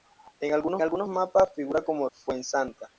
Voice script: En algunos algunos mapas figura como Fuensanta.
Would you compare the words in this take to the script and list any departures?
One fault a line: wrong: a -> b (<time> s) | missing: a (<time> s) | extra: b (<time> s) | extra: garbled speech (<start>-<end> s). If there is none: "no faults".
no faults